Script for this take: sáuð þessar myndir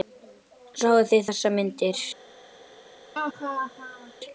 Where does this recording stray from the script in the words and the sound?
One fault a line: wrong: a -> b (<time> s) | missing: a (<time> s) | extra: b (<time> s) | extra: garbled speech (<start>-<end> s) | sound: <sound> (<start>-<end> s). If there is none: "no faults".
extra: þið (1.1 s)
sound: laugh (3.1-4.1 s)